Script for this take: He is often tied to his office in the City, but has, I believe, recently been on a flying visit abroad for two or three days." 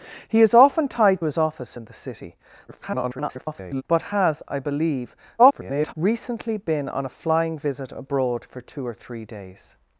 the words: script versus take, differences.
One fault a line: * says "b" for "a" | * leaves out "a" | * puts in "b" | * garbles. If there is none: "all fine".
* leaves out "to"
* garbles
* garbles